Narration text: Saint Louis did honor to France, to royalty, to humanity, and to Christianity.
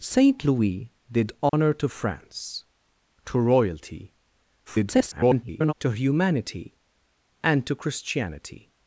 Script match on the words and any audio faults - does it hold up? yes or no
no